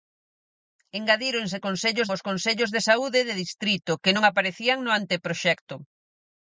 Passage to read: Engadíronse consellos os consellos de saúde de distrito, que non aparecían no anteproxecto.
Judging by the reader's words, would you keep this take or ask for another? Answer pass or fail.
pass